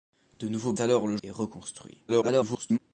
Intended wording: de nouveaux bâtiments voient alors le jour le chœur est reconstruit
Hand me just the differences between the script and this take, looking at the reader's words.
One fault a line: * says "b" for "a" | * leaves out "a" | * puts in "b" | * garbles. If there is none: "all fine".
* leaves out "bâtiments voient"
* leaves out "jour le chœur"
* garbles